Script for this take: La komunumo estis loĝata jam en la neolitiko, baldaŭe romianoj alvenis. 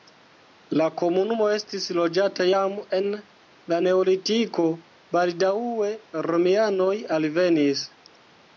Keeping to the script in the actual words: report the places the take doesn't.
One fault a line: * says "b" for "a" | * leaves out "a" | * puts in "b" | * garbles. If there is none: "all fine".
all fine